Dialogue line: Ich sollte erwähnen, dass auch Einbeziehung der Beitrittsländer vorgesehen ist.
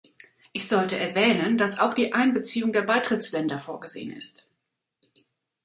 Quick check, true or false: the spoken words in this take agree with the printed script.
false